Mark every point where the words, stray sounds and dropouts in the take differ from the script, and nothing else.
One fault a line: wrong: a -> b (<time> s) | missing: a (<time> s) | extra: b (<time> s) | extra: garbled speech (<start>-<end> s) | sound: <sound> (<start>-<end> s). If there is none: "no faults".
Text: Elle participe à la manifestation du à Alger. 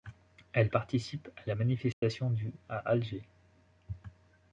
sound: dropout (1.9-2.0 s)